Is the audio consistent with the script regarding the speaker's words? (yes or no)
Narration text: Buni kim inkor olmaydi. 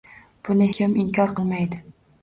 yes